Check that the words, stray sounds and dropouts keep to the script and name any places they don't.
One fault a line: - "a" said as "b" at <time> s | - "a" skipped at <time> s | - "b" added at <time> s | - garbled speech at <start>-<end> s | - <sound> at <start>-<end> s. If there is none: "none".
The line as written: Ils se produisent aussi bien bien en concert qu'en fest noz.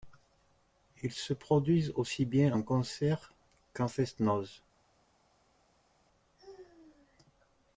- "bien" skipped at 2.6 s